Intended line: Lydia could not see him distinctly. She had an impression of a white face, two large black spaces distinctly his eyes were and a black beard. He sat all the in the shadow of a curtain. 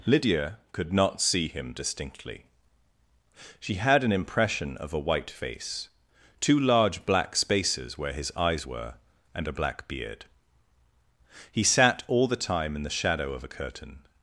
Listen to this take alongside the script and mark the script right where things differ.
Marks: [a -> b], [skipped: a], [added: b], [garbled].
Lydia could not see him distinctly. She had an impression of a white face, two large black spaces [distinctly -> where] his eyes were and a black beard. He sat all the [added: time] in the shadow of a curtain.